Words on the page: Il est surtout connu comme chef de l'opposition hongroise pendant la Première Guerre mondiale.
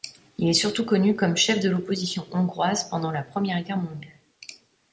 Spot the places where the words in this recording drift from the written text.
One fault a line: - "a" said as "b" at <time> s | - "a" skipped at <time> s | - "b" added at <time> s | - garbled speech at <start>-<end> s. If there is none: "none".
none